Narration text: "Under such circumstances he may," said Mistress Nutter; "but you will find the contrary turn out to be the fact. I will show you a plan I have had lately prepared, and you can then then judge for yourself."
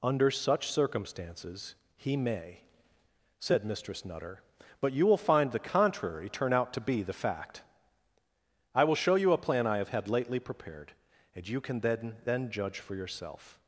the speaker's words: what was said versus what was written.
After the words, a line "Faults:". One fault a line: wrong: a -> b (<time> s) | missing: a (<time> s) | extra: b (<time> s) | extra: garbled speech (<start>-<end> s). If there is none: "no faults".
"Under such circumstances he may," said Mistress Nutter; "but you will find the contrary turn out to be the fact. I will show you a plan I have had lately prepared, and you can then then judge for yourself."
Faults:
no faults